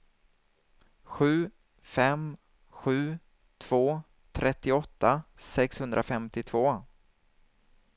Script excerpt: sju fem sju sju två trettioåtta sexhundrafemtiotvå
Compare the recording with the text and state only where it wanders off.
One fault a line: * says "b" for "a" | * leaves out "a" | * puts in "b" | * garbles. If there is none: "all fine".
* leaves out "sju"